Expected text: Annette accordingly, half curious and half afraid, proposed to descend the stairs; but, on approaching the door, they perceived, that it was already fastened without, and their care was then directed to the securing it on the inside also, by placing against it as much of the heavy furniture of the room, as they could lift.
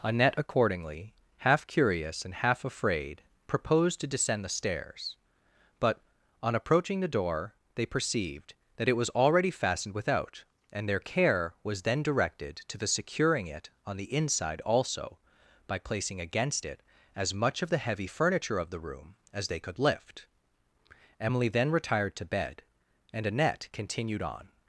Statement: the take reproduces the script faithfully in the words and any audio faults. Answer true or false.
false